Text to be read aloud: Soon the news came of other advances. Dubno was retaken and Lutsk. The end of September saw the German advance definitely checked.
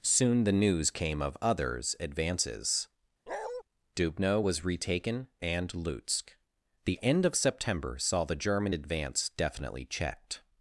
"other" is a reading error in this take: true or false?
true